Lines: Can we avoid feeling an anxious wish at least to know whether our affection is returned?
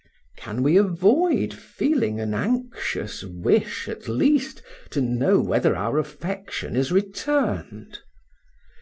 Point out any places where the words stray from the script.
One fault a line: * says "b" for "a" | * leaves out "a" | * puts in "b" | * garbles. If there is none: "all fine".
all fine